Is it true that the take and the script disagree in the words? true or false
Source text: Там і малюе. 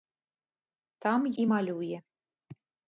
false